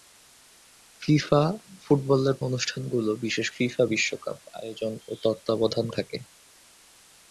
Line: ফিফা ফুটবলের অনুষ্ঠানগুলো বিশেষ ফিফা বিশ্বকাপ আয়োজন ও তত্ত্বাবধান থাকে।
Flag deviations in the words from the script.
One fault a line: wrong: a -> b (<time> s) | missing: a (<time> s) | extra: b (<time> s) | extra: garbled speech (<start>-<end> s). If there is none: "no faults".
no faults